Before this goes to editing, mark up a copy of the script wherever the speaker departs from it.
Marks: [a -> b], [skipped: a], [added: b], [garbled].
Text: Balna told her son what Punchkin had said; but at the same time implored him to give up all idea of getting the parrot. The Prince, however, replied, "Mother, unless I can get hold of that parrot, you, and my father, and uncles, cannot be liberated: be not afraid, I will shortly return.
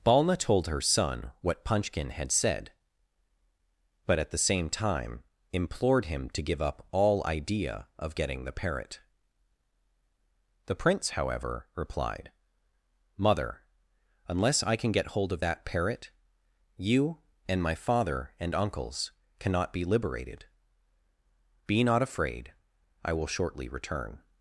Balna told her son what Punchkin had said; but at the same time implored him to give up all idea of getting the parrot. The Prince, however, replied, "Mother, unless I can get hold of that parrot, you, and my father, and uncles, cannot be liberated: be not afraid, I will shortly return.